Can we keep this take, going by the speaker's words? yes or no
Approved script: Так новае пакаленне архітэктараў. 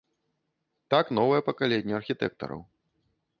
yes